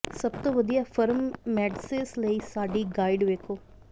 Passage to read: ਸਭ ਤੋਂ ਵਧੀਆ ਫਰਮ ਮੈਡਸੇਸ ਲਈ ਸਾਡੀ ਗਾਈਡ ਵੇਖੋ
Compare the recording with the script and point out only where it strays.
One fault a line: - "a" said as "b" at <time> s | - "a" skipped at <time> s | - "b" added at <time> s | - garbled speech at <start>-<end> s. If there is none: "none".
none